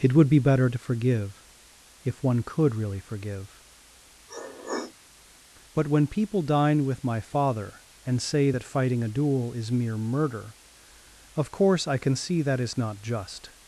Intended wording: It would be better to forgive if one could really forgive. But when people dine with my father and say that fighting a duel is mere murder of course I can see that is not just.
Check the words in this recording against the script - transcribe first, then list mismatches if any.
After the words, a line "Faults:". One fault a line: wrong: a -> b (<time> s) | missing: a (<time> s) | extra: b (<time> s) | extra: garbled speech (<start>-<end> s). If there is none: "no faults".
It would be better to forgive if one could really forgive. But when people dine with my father and say that fighting a duel is mere murder of course I can see that is not just.
Faults:
no faults